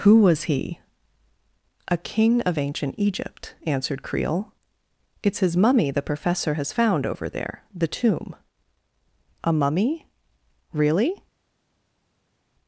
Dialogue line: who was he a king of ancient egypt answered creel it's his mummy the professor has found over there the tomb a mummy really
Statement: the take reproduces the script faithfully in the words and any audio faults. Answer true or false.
true